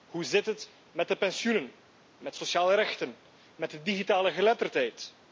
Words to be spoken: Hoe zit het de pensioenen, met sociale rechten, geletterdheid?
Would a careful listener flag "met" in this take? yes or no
no